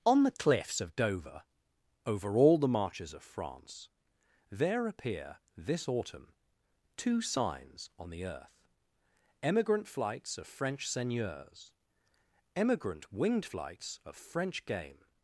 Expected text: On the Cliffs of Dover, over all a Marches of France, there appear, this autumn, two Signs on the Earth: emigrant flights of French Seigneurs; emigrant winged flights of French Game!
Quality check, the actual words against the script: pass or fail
fail